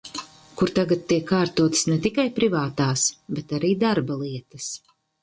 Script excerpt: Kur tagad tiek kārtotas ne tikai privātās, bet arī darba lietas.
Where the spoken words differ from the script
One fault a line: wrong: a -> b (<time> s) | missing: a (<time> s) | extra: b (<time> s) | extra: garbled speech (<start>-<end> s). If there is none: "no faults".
no faults